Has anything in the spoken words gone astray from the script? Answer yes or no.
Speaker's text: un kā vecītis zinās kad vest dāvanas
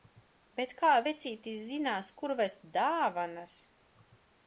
yes